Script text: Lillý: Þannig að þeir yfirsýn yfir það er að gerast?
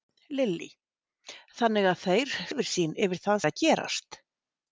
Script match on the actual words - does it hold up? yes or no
yes